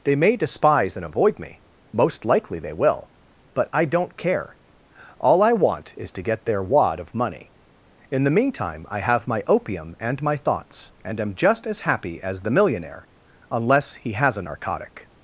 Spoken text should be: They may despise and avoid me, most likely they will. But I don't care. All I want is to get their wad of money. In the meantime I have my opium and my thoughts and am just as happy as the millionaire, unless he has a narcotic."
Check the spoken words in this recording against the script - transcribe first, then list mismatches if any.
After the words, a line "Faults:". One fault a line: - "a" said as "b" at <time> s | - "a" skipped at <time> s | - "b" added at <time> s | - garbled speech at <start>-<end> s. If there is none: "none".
They may despise and avoid me, most likely they will. But I don't care. All I want is to get their wad of money. In the meantime I have my opium and my thoughts and am just as happy as the millionaire, unless he has a narcotic."
Faults:
none